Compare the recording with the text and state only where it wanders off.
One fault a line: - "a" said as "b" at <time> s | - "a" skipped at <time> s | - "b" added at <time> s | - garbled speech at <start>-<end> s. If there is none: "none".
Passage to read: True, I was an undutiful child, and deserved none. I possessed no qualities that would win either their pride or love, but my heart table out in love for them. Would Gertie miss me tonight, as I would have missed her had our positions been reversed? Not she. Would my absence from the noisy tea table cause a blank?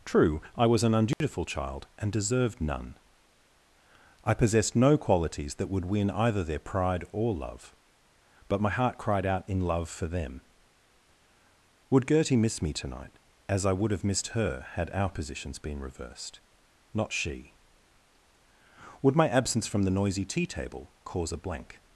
- "table" said as "cried" at 9.0 s